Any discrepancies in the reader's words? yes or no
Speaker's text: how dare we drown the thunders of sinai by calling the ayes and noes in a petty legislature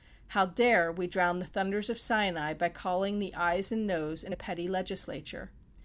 no